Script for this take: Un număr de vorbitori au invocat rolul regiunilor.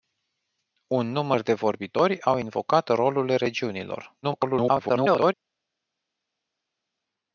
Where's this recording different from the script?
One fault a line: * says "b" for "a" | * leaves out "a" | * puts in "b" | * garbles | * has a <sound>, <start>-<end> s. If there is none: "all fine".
* garbles